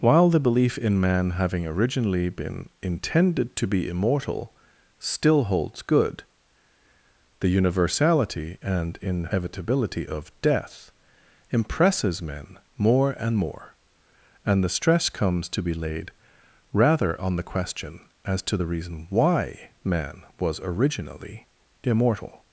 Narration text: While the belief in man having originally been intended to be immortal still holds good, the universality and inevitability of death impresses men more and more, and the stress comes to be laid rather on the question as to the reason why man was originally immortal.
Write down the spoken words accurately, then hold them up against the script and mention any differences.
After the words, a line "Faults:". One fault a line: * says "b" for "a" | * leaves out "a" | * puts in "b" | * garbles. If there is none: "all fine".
While the belief in man having originally been intended to be immortal still holds good, the universality and inevitability of death impresses men more and more, and the stress comes to be laid rather on the question as to the reason why man was originally immortal.
Faults:
all fine